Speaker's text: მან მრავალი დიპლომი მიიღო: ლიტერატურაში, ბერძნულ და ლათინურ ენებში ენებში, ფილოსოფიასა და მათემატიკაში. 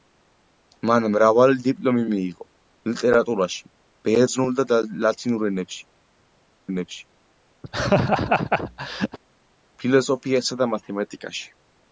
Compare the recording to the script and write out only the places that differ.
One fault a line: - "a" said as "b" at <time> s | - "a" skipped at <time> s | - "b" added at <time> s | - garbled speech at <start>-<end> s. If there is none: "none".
none